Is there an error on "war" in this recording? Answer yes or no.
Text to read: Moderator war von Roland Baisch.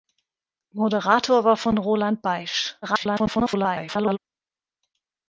no